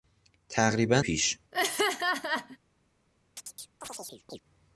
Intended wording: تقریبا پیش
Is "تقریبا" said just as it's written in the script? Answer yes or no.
yes